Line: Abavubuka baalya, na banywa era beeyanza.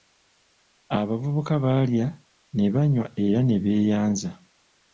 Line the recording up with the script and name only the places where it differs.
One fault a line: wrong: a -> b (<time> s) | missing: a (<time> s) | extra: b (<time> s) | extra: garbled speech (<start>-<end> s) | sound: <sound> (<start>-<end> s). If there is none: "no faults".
wrong: na -> ne (2.6 s)
extra: ne (3.4 s)